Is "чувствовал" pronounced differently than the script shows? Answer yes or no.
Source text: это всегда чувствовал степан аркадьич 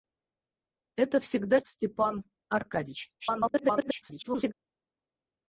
yes